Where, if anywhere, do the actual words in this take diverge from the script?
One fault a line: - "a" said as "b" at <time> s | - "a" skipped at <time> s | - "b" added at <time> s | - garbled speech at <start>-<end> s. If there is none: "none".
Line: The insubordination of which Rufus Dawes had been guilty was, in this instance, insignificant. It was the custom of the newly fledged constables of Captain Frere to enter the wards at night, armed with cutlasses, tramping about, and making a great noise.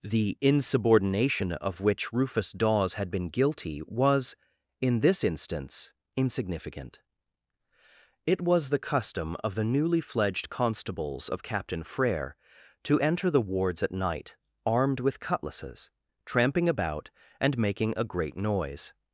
none